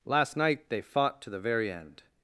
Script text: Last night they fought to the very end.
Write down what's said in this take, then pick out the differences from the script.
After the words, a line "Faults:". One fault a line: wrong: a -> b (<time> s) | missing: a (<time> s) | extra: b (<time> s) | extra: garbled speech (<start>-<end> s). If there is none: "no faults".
Last night they fought to the very end.
Faults:
no faults